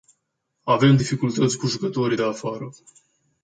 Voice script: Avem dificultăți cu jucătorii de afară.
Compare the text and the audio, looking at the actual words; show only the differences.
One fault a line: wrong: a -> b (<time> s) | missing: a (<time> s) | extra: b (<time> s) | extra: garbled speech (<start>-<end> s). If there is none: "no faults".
no faults